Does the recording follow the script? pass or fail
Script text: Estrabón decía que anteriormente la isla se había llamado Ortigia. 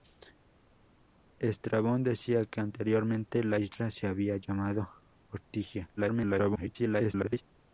fail